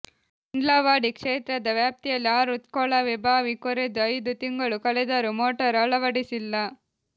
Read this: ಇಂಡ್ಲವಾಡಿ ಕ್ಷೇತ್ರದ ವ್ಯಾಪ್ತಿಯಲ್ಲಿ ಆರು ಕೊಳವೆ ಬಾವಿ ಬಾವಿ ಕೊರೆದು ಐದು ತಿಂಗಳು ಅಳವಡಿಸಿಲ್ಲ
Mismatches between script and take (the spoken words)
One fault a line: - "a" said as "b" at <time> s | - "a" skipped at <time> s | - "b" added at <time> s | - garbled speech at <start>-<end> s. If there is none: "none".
- "ಬಾವಿ" skipped at 3.5 s
- "ಕಳೆದರೂ ಮೋಟಾರ್" added at 4.9 s